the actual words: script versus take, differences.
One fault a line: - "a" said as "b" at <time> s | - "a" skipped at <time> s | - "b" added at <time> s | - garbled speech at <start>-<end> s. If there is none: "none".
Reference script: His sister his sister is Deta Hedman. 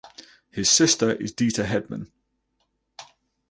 - "his sister" skipped at 1.1 s